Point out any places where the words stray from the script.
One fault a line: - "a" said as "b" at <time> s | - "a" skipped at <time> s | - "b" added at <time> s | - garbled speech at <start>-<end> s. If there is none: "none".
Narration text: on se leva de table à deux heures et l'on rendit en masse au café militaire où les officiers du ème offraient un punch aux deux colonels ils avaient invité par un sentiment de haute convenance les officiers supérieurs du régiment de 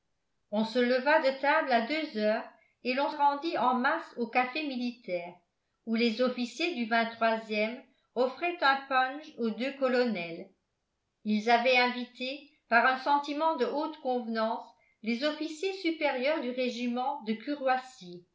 none